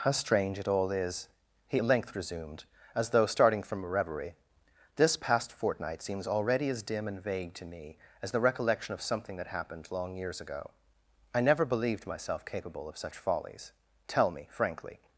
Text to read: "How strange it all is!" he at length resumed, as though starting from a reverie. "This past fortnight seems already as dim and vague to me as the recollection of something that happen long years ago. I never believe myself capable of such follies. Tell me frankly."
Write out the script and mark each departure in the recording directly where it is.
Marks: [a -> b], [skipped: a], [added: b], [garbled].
"How strange it all is!" he at length resumed, as though starting from a reverie. "This past fortnight seems already as dim and vague to me as the recollection of something that [happen -> happened] long years ago. I never [believe -> believed] myself capable of such follies. Tell me frankly."